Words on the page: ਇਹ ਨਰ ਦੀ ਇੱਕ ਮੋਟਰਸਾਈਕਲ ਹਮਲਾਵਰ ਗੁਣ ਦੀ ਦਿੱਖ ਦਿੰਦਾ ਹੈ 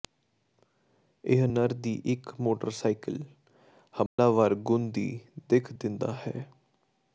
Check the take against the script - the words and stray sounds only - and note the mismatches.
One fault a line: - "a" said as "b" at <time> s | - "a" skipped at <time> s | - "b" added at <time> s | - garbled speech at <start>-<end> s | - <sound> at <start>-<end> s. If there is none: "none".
- dropout at 4.1-4.2 s